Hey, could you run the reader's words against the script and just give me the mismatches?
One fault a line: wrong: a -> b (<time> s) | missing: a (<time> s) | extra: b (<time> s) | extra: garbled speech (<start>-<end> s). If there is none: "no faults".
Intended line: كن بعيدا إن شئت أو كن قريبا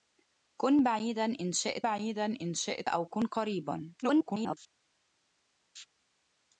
extra: بعيدا إن شئت (1.8 s)
extra: garbled speech (4.0-4.6 s)